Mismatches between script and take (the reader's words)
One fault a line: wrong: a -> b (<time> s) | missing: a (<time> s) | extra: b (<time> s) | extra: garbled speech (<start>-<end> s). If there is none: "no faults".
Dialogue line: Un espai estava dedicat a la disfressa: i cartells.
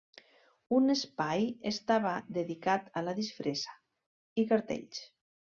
no faults